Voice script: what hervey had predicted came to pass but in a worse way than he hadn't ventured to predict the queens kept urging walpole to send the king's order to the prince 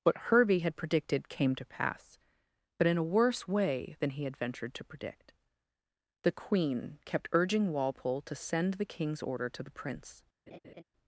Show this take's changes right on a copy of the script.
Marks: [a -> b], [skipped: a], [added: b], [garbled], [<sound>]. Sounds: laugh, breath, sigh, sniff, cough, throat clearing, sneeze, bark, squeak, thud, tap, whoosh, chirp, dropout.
what hervey had predicted came to pass but in a worse way than he [hadn't -> had] ventured to predict the [queens -> queen] kept urging walpole to send the king's order to the prince [laugh]